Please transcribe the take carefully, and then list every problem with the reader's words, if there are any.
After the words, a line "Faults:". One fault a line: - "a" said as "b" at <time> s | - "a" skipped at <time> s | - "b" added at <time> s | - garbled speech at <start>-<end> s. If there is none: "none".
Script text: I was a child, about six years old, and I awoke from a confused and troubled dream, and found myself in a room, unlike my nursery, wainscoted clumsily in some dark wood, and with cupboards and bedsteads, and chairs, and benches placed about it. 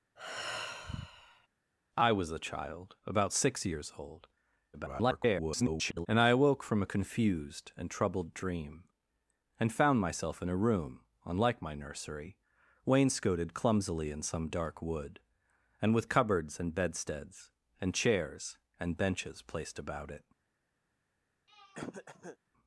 I was a child, about six years old, [garbled] and I awoke from a confused and troubled dream, and found myself in a room, unlike my nursery, wainscoted clumsily in some dark wood, and with cupboards and bedsteads, and chairs, and benches placed about it.
Faults:
- garbled speech at 4.7-6.1 s